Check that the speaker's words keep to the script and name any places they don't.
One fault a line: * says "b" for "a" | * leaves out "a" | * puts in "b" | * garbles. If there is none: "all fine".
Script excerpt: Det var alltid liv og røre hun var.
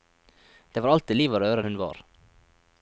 all fine